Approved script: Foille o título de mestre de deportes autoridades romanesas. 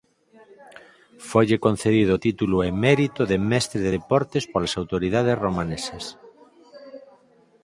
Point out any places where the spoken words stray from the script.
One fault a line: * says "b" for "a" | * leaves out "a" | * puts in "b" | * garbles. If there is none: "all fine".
* puts in "concedido"
* puts in "emérito"
* puts in "polas"